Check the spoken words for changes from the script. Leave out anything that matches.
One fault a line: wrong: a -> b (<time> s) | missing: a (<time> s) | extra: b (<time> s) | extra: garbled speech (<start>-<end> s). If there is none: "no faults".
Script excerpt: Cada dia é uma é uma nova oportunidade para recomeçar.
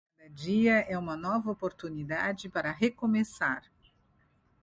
missing: é uma (1.1 s)